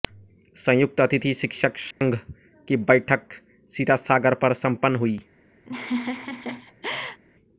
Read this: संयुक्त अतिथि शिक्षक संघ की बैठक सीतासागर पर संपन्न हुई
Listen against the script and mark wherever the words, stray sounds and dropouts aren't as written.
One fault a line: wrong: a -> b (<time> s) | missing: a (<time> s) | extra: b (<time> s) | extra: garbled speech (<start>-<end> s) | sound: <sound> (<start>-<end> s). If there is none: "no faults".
sound: dropout (1.9-2.0 s)
sound: laugh (5.6-7.2 s)